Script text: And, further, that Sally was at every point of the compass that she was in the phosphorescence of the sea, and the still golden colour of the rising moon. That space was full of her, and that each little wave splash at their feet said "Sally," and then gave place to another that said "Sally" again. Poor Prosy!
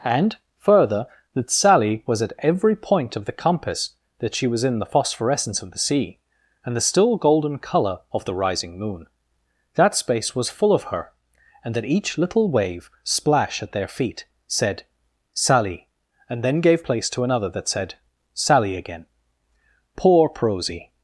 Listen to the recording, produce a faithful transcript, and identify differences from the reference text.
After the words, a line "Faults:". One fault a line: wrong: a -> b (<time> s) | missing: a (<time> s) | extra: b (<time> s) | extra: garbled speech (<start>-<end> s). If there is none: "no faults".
And, further, that Sally was at every point of the compass that she was in the phosphorescence of the sea, and the still golden colour of the rising moon. That space was full of her, and that each little wave splash at their feet said "Sally," and then gave place to another that said "Sally" again. Poor Prosy!
Faults:
no faults